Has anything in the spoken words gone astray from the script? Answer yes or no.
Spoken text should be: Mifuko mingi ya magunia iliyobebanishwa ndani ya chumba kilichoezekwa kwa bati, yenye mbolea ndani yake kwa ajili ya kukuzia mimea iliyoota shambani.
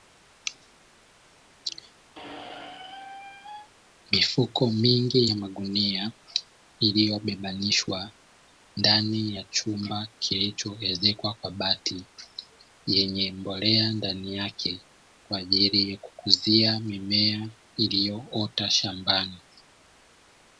no